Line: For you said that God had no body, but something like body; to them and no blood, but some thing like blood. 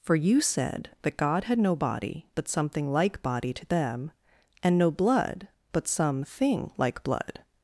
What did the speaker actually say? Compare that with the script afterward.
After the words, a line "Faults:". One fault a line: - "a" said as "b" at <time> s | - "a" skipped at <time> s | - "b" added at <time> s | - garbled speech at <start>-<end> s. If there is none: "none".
For you said that God had no body, but something like body; to them and no blood, but some thing like blood.
Faults:
none